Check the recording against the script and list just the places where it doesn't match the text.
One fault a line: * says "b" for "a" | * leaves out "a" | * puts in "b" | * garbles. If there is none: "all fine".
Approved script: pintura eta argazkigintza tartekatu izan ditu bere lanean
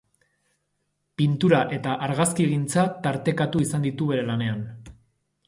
all fine